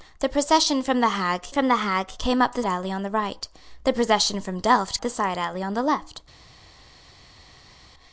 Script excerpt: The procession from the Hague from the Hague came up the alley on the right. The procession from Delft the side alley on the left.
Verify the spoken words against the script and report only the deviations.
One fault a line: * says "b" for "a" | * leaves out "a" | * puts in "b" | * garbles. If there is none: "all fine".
all fine